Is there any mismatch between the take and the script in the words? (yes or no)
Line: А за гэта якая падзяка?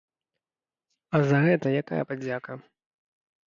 no